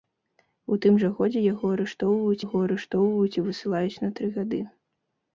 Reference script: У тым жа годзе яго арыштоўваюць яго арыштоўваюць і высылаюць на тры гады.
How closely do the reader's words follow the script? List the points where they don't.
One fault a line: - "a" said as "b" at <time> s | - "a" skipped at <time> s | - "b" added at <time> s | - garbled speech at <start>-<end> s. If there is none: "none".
none